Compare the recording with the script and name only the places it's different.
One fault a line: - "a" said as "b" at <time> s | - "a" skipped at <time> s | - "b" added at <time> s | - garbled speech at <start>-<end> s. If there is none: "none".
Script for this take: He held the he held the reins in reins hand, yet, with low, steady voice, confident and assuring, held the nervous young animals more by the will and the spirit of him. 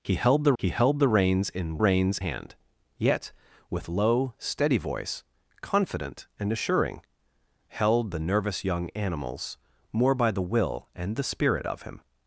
none